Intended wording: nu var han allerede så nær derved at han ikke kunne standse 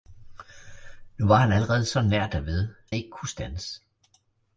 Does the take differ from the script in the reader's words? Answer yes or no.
yes